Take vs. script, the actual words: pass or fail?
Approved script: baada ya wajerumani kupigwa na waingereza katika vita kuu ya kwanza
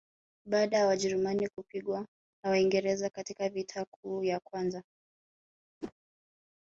pass